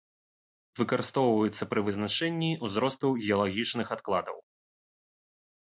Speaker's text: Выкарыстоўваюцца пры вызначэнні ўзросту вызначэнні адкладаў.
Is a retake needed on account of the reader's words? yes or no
yes